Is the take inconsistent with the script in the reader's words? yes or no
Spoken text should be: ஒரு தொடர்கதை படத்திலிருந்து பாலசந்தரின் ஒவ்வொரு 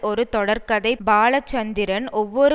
yes